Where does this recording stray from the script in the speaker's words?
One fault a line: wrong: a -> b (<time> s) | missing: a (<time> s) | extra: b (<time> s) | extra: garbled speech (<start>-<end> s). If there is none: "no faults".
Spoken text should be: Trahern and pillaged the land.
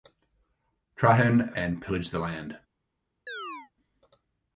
no faults